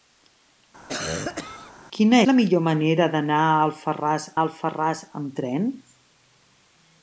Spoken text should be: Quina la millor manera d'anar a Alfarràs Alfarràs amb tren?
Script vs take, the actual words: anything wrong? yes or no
no